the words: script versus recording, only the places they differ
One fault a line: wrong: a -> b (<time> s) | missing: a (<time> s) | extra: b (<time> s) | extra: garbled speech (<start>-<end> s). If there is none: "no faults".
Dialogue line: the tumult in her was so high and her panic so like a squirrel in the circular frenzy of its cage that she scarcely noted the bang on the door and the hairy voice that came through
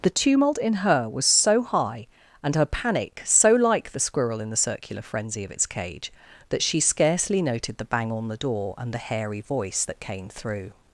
wrong: a -> the (3.9 s)